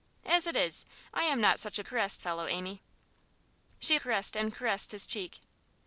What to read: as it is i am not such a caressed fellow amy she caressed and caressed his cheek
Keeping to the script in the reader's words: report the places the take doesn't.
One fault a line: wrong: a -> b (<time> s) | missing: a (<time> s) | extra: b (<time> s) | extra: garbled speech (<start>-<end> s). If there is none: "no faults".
no faults